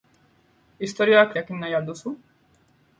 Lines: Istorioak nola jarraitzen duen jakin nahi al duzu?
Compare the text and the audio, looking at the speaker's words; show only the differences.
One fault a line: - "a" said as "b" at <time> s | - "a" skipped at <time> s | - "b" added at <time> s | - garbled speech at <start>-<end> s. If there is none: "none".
- "nola jarraitzen duen" skipped at 1.4 s